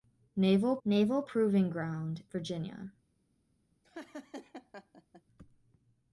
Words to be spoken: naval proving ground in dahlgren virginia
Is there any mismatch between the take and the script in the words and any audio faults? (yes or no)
yes